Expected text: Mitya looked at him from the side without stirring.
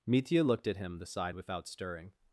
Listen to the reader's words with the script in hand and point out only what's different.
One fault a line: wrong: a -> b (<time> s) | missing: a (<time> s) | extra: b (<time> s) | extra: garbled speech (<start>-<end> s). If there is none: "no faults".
missing: from (1.0 s)